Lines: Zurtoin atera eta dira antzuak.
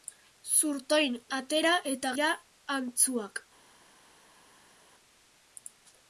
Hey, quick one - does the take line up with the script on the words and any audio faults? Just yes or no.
yes